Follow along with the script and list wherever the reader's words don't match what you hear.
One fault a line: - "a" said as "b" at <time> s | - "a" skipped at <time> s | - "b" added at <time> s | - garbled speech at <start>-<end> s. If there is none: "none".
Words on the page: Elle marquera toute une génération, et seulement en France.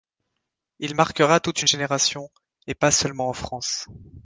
- "Elle" said as "Il" at 0.8 s
- "pas" added at 2.7 s